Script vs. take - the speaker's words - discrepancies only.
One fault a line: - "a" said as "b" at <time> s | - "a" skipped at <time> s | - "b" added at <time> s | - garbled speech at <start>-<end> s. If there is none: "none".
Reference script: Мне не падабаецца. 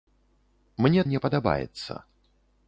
none